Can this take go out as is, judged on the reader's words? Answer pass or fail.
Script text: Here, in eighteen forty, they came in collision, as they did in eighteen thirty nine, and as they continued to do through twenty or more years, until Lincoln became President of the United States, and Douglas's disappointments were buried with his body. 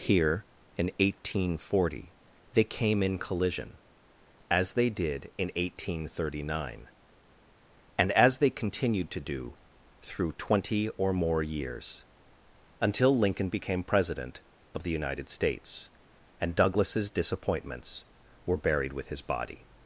pass